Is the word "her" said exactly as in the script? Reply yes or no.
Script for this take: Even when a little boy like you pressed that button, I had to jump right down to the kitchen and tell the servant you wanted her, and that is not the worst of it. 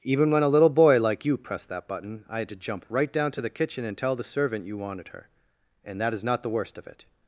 yes